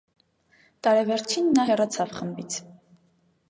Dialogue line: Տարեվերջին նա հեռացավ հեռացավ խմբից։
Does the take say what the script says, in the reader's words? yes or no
no